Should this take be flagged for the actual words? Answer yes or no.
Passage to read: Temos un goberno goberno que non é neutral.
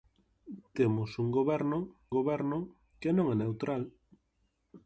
no